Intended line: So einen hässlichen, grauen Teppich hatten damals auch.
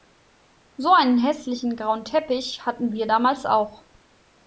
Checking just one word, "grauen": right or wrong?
right